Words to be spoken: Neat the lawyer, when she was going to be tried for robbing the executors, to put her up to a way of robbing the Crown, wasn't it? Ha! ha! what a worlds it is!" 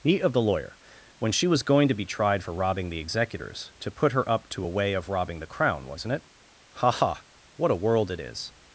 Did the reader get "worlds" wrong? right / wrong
wrong